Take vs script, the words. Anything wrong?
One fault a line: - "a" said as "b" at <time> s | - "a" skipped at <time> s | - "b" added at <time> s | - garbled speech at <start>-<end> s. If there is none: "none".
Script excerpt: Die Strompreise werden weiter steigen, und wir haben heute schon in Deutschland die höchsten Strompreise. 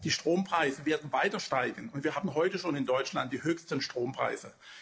none